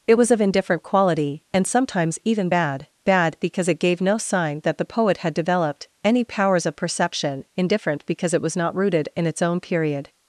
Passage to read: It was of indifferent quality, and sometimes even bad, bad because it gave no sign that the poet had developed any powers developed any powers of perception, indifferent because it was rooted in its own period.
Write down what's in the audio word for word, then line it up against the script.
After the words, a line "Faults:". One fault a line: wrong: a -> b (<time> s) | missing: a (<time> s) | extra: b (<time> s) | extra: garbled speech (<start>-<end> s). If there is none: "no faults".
It was of indifferent quality, and sometimes even bad, bad because it gave no sign that the poet had developed any powers of perception, indifferent because it was not rooted in its own period.
Faults:
missing: developed any powers (6.7 s)
extra: not (8.6 s)